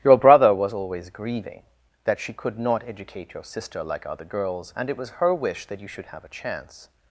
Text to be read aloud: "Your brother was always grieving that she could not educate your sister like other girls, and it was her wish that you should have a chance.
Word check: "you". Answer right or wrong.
right